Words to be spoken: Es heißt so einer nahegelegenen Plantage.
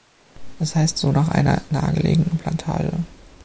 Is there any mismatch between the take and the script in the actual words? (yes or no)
yes